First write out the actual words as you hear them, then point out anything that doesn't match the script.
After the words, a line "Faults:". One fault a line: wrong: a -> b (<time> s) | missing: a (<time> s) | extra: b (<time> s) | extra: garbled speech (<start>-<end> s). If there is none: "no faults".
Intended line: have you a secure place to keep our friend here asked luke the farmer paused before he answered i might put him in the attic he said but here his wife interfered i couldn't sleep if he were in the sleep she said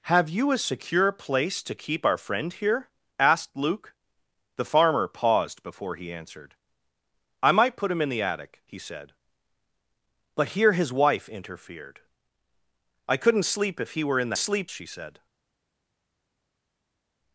have you a secure place to keep our friend here asked luke the farmer paused before he answered i might put him in the attic he said but here his wife interfered i couldn't sleep if he were in the sleep she said
Faults:
no faults